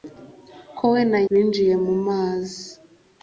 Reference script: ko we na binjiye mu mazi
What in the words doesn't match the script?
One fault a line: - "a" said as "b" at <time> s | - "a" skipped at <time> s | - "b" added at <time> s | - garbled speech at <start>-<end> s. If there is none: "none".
none